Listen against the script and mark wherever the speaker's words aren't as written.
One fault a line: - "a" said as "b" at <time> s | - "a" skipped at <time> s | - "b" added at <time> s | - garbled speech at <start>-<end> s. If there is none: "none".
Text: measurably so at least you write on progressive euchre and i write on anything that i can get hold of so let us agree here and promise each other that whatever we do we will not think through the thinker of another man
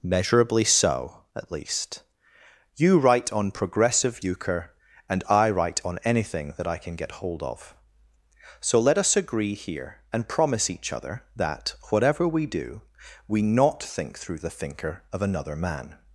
- "will" skipped at 13.4 s